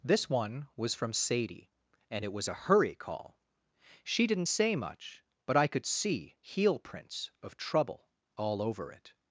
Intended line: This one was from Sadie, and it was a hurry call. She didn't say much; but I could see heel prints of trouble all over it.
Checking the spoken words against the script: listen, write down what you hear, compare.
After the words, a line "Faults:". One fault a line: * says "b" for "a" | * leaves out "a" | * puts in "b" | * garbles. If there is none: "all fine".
This one was from Sadie, and it was a hurry call. She didn't say much; but I could see heel prints of trouble all over it.
Faults:
all fine